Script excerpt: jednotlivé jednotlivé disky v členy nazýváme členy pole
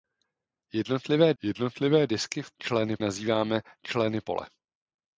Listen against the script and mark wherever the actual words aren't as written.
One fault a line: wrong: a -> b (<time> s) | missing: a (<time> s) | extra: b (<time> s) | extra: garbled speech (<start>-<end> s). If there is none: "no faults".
no faults